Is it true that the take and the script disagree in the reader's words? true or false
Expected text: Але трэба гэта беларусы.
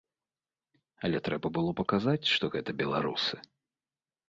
true